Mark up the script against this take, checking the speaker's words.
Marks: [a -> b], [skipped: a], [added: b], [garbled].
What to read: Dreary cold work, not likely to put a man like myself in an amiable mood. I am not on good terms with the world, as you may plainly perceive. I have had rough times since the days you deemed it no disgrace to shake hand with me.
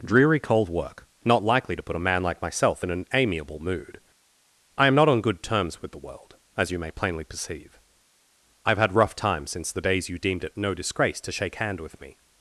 Dreary cold work, not likely to put a man like myself in an amiable mood. I am not on good terms with the world, as you may plainly perceive. I have had rough times since the days you deemed it no disgrace to shake hand with me.